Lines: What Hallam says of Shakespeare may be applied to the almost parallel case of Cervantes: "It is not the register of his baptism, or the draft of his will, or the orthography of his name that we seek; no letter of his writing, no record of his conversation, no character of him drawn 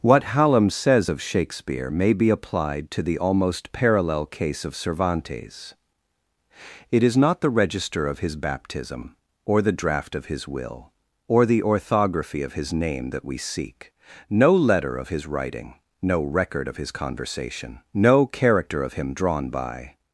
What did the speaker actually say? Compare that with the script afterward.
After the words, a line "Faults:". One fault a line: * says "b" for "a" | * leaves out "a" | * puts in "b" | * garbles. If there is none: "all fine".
What Hallam says of Shakespeare may be applied to the almost parallel case of Cervantes: "It is not the register of his baptism, or the draft of his will, or the orthography of his name that we seek; no letter of his writing, no record of his conversation, no character of him drawn by
Faults:
* puts in "by"